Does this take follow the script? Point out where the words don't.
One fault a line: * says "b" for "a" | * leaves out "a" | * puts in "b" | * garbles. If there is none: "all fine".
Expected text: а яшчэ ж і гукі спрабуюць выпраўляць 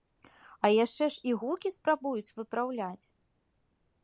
all fine